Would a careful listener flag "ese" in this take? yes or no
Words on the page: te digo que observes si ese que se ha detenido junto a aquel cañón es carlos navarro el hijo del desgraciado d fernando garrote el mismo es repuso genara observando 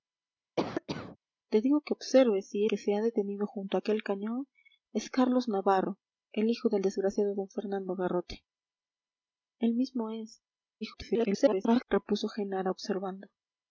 yes